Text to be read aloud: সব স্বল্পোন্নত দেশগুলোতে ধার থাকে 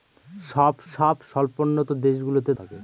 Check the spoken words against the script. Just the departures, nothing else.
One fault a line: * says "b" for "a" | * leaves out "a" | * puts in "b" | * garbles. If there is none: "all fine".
* puts in "সব"
* leaves out "ধার"